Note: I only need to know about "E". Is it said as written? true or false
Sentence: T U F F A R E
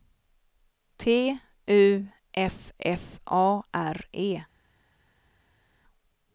true